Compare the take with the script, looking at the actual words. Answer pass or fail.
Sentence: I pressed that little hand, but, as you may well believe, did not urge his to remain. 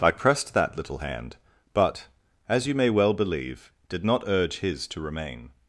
pass